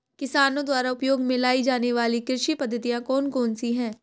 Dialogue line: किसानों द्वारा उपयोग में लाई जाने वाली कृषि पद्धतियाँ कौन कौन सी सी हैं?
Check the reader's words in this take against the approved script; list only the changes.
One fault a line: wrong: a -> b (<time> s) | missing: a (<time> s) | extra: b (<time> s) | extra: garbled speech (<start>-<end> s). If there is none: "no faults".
missing: सी (3.7 s)